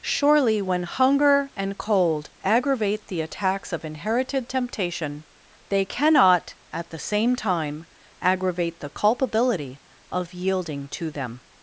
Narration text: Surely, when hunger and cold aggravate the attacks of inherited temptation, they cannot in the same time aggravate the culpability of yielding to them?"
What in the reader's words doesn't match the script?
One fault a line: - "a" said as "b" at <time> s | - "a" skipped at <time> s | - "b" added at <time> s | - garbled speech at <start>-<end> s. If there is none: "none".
- "in" said as "at" at 6.7 s